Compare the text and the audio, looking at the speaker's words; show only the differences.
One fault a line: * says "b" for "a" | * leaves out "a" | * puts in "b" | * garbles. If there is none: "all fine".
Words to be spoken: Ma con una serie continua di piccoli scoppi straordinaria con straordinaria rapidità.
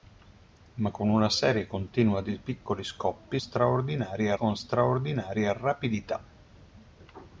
all fine